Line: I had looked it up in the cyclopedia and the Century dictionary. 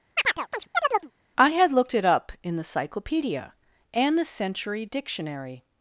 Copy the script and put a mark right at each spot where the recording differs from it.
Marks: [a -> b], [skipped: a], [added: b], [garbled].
I had looked it up in the cyclopedia and the Century dictionary.